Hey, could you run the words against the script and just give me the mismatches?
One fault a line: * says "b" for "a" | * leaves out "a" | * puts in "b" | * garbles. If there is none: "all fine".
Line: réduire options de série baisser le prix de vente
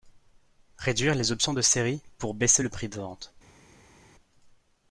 * puts in "les"
* puts in "pour"